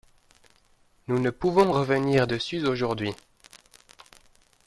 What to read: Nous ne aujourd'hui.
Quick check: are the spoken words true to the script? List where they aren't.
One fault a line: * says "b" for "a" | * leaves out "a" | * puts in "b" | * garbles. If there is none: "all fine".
* puts in "pouvons revenir dessus"